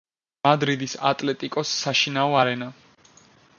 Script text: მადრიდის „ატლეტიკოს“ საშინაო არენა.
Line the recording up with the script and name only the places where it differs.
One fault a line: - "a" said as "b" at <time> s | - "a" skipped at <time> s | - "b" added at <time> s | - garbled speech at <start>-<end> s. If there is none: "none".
none